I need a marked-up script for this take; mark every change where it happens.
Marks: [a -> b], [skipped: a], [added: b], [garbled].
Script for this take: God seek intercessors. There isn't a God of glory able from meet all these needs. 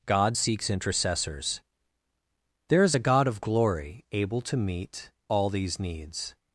God [seek -> seeks] intercessors. There [isn't -> is] a God of glory able [from -> to] meet all these needs.